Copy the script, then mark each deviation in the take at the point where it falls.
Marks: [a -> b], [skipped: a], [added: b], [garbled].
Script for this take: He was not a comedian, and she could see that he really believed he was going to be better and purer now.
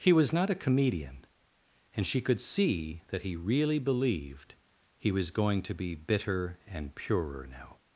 He was not a comedian, and she could see that he really believed he was going to be [better -> bitter] and purer now.